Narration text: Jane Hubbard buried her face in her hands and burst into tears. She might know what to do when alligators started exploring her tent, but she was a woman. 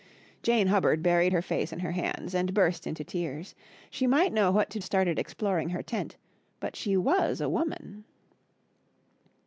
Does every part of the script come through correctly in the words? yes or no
no